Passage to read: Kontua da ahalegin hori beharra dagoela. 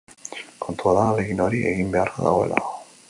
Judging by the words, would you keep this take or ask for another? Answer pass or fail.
fail